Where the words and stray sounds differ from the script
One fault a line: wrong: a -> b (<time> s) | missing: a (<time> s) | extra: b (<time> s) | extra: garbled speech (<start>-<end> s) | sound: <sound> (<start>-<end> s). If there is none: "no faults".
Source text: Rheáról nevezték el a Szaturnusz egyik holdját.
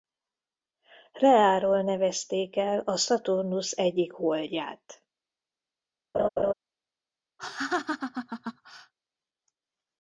sound: laugh (6.1-6.5 s)
sound: laugh (7.4-8.9 s)